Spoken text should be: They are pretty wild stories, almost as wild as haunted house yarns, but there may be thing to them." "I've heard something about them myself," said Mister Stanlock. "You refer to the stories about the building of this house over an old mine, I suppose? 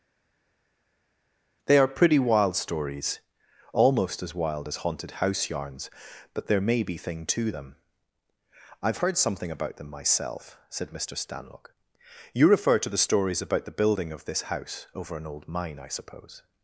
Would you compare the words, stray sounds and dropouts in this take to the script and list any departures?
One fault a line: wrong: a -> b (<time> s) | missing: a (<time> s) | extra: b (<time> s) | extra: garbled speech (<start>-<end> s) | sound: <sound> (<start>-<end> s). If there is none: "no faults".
no faults